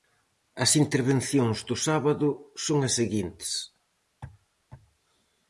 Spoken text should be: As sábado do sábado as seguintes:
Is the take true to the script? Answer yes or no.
no